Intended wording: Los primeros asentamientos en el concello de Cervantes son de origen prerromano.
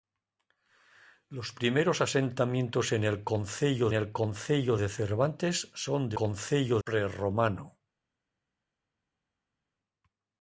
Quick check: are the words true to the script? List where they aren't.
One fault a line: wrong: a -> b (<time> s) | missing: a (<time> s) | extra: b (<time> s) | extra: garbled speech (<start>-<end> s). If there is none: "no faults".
extra: el concello (3.9 s)
wrong: origen -> concello (6.1 s)